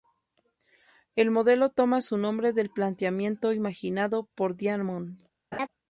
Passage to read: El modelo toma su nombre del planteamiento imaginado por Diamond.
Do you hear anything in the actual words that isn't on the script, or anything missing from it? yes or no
no